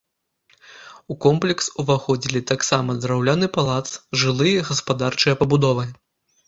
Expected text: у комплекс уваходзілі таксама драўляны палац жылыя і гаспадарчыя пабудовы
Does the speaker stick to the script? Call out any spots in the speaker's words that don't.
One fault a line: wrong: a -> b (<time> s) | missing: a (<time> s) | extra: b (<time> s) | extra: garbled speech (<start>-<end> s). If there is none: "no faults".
no faults